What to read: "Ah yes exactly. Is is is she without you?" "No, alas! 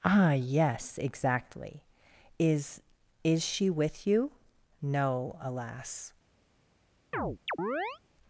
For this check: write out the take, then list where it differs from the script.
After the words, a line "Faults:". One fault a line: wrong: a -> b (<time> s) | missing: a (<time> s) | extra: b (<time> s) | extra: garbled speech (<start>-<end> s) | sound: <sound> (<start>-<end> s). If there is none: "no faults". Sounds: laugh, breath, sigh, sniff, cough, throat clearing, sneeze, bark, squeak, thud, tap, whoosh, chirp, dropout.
"Ah yes exactly. Is is she with you?" "No, alas!
Faults:
missing: is (3.4 s)
wrong: without -> with (3.7 s)
sound: chirp (7.1-8.0 s)